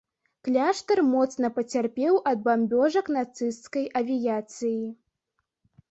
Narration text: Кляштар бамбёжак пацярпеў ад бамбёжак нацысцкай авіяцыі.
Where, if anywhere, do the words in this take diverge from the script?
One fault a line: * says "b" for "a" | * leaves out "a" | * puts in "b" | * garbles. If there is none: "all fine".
* says "моцна" for "бамбёжак"